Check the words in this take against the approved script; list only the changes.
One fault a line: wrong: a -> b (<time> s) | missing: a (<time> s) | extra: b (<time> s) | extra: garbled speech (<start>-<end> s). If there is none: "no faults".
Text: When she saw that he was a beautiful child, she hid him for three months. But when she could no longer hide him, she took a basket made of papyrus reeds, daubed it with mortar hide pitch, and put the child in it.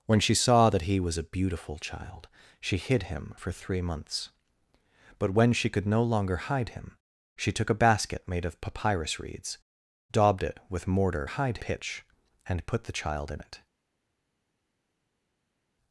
no faults